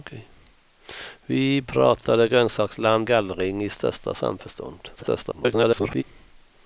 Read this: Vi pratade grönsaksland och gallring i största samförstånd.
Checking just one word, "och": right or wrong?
wrong